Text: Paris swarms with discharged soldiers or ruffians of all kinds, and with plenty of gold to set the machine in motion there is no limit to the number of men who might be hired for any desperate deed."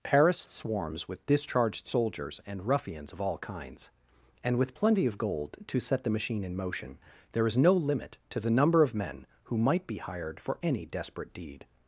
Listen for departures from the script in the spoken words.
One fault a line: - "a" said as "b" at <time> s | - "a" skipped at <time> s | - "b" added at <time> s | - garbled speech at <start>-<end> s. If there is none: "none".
- "or" said as "and" at 2.5 s